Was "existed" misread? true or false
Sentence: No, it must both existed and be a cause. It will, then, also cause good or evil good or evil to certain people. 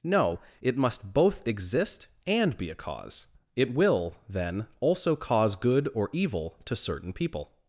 true